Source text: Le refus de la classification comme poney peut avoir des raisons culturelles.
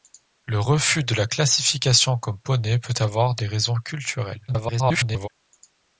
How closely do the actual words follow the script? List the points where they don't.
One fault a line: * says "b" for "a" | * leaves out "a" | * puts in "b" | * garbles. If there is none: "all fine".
* garbles